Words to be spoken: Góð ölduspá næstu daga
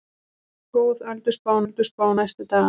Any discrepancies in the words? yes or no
yes